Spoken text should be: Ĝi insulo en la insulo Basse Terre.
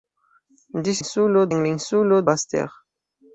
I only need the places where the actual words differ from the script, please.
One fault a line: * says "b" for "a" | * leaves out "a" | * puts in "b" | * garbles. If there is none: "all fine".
all fine